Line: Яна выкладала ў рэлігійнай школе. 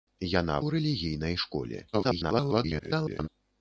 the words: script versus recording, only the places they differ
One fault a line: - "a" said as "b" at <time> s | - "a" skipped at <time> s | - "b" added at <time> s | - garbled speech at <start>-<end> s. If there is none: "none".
- "выкладала" skipped at 0.6 s
- garbled speech at 1.9-3.3 s